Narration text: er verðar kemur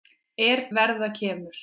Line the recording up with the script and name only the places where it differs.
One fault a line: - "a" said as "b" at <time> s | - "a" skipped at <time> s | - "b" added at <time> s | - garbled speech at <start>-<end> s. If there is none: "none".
none